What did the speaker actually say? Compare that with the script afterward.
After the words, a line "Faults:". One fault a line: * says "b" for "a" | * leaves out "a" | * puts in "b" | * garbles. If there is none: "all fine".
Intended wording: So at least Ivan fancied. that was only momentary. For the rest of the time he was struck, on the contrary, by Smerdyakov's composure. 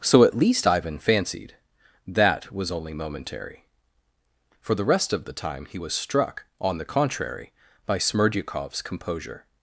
So at least Ivan fancied. that was only momentary. For the rest of the time he was struck, on the contrary, by Smerdyakov's composure.
Faults:
all fine